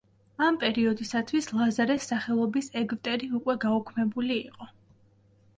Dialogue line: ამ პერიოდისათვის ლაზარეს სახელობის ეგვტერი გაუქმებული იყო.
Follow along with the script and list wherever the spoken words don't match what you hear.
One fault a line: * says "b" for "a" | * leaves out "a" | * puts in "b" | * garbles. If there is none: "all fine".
* puts in "უკვე"